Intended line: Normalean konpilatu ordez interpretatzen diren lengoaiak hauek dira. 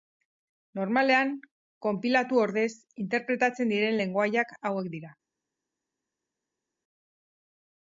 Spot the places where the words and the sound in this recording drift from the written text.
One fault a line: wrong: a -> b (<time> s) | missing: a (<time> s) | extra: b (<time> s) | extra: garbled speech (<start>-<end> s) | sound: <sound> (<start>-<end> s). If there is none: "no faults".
no faults